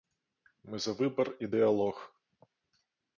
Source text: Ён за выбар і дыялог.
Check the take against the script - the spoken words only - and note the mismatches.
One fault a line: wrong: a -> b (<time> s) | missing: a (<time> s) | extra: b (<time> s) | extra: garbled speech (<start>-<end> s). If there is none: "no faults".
wrong: Ён -> Мы (0.7 s)